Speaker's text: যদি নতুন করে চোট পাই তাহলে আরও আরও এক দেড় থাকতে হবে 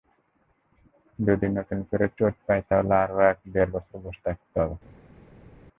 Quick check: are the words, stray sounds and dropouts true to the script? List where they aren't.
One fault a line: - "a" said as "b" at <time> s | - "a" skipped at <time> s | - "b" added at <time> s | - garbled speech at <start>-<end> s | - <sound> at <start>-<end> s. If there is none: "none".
- "আরও" skipped at 3.2 s
- "বছর বসে" added at 3.7 s